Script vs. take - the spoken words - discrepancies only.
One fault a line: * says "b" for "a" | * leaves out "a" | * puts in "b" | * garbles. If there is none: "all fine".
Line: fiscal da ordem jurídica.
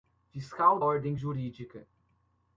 * leaves out "da"